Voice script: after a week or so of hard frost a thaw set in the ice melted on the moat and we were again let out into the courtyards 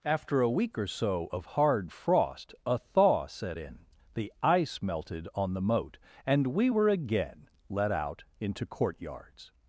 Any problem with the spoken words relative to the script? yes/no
yes